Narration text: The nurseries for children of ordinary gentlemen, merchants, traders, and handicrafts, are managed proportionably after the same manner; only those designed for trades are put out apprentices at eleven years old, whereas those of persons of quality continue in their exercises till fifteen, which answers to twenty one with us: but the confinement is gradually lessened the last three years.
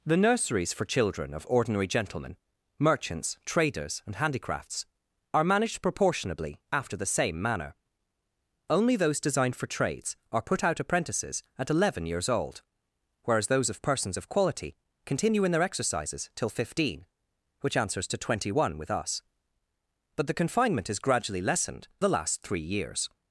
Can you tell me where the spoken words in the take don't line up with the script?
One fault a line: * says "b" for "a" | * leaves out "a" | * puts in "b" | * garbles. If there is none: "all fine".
all fine